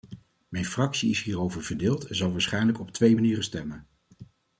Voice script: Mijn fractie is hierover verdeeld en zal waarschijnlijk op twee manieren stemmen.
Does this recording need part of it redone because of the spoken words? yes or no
no